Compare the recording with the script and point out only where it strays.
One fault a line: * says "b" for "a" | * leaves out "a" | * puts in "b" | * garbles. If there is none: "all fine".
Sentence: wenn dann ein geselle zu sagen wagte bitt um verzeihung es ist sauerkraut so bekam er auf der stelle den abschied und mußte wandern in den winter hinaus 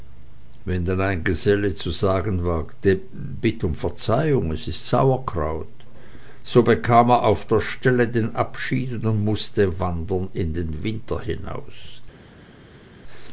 all fine